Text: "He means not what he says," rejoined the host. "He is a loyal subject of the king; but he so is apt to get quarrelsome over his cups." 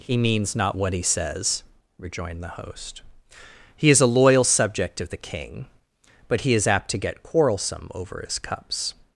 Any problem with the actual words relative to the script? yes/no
yes